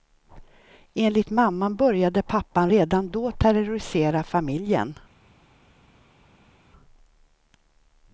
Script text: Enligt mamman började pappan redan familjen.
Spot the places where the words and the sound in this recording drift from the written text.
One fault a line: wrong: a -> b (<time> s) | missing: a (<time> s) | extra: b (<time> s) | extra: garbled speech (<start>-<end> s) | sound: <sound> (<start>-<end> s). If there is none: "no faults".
extra: då terrorisera (3.1 s)